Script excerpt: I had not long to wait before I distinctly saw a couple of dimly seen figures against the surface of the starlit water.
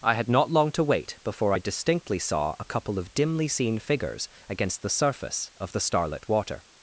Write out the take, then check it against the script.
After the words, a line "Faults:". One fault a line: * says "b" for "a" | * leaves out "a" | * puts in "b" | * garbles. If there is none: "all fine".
I had not long to wait before I distinctly saw a couple of dimly seen figures against the surface of the starlit water.
Faults:
all fine